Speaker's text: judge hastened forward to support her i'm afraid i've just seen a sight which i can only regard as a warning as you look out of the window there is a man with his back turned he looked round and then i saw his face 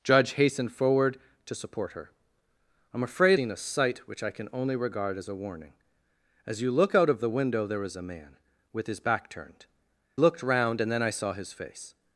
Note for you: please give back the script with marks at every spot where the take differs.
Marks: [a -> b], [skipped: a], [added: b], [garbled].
judge hastened forward to support her i'm afraid [skipped: i've just] seen a sight which i can only regard as a warning as you look out of the window there is a man with his back turned [skipped: he] looked round and then i saw his face